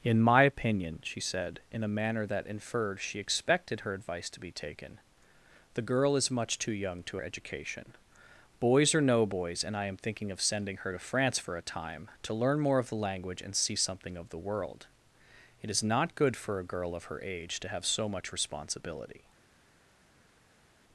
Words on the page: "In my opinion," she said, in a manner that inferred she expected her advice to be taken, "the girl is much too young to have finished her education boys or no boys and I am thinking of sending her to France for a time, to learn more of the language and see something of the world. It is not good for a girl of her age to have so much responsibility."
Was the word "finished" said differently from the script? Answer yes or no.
yes